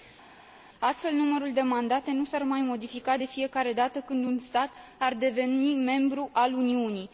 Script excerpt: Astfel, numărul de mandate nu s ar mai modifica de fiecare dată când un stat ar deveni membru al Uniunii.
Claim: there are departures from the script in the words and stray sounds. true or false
false